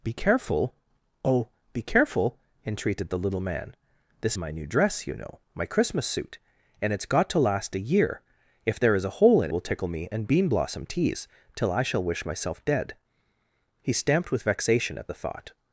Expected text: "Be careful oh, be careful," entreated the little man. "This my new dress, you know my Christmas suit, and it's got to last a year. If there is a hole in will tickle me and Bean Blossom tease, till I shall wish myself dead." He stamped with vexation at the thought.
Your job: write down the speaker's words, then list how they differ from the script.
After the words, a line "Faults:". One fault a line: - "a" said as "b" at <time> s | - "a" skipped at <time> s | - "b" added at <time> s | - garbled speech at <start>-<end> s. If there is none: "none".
"Be careful oh, be careful," entreated the little man. "This my new dress, you know my Christmas suit, and it's got to last a year. If there is a hole in will tickle me and Bean Blossom tease, till I shall wish myself dead." He stamped with vexation at the thought.
Faults:
none